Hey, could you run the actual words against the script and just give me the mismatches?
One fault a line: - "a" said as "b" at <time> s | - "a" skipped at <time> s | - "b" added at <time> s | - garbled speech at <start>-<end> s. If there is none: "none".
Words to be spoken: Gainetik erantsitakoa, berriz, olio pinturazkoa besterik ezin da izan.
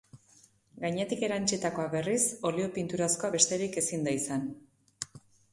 none